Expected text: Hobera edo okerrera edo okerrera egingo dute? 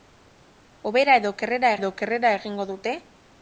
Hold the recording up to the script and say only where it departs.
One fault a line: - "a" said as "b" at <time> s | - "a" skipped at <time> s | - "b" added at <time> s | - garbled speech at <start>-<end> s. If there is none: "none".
none